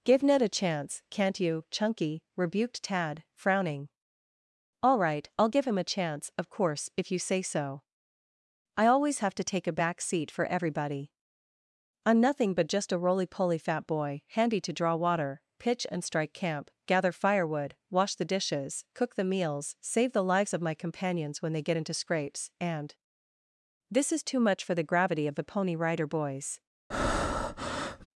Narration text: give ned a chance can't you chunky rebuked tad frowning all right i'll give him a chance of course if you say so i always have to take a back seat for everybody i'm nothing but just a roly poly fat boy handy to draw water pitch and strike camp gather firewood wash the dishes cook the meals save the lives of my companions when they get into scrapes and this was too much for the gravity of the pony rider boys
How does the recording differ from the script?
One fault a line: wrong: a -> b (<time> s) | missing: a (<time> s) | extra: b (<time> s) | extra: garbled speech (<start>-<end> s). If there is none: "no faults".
wrong: was -> is (24.1 s)